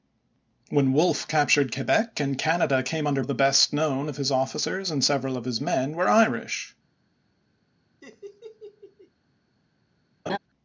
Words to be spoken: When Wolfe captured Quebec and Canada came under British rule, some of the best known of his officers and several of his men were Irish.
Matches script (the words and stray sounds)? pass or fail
fail